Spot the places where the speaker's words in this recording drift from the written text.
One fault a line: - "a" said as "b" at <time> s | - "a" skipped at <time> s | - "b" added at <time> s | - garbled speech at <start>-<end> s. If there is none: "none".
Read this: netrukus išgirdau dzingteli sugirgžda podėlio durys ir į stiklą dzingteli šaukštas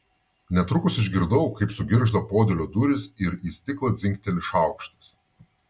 - "dzingteli" said as "kaip" at 1.6 s